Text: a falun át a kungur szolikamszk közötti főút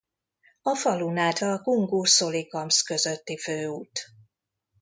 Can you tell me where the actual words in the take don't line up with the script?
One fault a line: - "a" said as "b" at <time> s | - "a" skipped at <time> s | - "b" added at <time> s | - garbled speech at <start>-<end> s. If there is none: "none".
none